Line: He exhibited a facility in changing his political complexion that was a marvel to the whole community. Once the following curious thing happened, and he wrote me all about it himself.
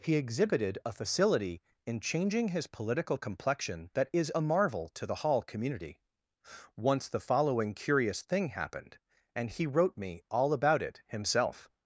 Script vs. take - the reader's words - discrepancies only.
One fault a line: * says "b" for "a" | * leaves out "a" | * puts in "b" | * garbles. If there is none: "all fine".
* says "is" for "was"
* says "hall" for "whole"